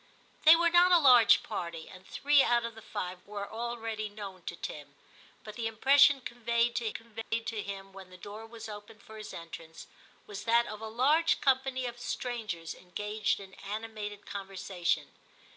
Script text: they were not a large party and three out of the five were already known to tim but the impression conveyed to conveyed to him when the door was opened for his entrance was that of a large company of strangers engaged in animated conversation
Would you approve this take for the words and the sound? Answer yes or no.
no